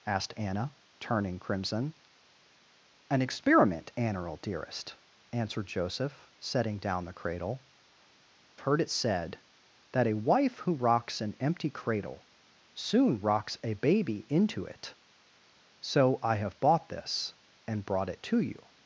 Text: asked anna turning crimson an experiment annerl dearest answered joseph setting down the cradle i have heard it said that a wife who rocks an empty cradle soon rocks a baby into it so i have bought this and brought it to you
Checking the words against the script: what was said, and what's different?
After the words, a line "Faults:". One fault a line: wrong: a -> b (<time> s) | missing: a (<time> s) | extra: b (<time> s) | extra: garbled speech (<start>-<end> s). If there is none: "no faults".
asked anna turning crimson an experiment annerl dearest answered joseph setting down the cradle heard it said that a wife who rocks an empty cradle soon rocks a baby into it so i have bought this and brought it to you
Faults:
missing: i have (7.6 s)